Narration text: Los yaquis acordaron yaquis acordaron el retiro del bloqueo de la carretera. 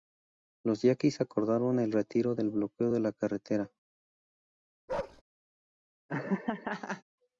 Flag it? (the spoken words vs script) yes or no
yes